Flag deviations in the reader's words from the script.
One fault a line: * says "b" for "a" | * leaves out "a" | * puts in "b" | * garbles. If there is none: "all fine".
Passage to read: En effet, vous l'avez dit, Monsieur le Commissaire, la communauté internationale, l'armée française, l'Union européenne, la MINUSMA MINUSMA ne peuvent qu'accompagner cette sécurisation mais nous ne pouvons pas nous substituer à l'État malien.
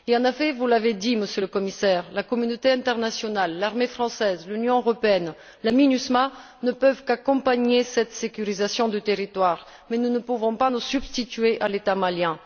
* leaves out "MINUSMA"
* puts in "du territoire"